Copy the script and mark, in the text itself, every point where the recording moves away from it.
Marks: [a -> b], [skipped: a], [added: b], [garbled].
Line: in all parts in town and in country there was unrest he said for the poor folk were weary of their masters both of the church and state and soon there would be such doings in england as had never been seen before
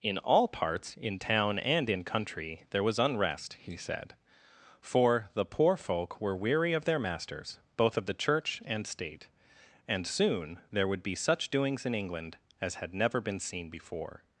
in all parts in town and in country there was unrest he said for the poor folk were weary of their masters both of the church and state and soon there would be such doings in england as had never been seen before